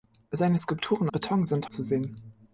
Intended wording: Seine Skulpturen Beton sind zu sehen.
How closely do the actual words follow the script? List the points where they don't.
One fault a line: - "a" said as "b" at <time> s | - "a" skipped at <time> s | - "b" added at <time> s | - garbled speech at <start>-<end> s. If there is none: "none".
none